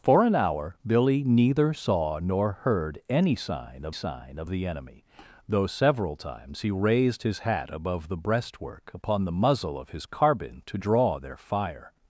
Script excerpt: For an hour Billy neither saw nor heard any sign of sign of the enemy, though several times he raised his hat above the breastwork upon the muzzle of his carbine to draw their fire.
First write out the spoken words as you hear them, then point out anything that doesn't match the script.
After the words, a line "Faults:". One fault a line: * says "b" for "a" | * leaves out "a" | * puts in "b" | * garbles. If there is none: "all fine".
For an hour Billy neither saw nor heard any sign of sign of the enemy, though several times he raised his hat above the breastwork upon the muzzle of his carbine to draw their fire.
Faults:
all fine